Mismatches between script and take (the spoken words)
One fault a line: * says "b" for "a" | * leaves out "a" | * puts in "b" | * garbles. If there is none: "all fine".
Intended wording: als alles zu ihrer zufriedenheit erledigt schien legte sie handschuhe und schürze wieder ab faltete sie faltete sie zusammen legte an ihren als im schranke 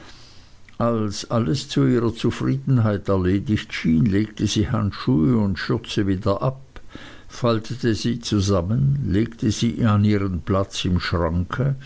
* leaves out "faltete sie"
* puts in "sie"
* says "platz" for "als"